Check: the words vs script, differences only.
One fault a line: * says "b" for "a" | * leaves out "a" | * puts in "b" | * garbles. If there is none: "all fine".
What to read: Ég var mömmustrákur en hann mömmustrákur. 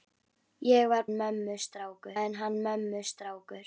all fine